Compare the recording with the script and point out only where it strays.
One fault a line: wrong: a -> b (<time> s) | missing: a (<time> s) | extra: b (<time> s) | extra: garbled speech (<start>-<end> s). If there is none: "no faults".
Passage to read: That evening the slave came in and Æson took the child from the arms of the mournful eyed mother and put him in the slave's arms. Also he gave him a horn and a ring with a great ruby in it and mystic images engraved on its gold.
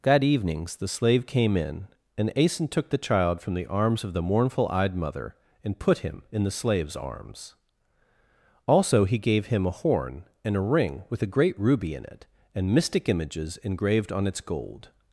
wrong: evening -> evenings (0.2 s)